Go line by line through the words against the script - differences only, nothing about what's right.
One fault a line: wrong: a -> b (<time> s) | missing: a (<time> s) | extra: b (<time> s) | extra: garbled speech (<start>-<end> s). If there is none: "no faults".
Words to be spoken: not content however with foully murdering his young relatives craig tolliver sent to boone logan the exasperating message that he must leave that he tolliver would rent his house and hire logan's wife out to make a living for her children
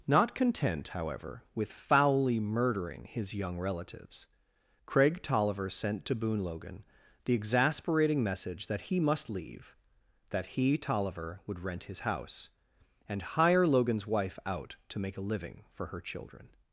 no faults